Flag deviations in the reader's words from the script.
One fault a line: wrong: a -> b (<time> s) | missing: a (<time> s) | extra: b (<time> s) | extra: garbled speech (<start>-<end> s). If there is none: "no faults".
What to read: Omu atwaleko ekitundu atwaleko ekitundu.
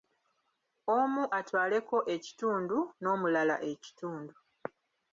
wrong: atwaleko -> n'omulala (3.0 s)